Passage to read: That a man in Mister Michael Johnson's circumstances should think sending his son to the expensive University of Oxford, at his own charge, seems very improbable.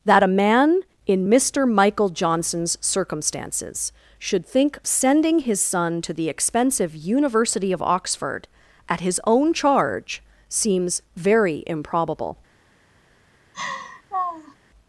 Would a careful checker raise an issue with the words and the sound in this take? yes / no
yes